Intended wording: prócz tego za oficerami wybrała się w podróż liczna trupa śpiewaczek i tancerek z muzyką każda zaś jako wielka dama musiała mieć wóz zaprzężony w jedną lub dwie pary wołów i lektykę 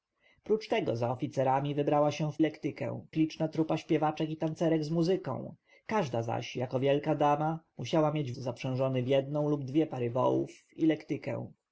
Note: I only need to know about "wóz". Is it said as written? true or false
false